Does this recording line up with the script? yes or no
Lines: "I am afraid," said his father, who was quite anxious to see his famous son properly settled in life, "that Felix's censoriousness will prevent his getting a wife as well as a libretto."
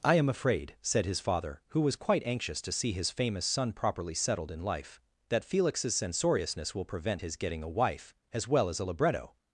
yes